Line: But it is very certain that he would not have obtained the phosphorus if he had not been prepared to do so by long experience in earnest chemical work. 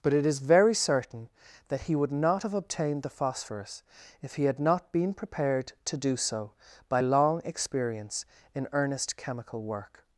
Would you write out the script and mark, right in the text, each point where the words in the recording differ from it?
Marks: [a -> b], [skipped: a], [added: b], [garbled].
But it is very certain that he would not have obtained the phosphorus if he had not been prepared to do so by long experience in earnest chemical work.